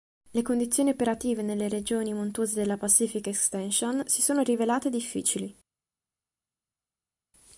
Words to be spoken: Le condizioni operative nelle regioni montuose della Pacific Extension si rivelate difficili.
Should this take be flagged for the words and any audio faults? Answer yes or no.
yes